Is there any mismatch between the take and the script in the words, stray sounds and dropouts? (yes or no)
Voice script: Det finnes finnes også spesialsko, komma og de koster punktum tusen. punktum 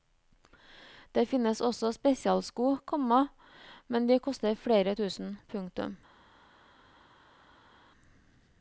yes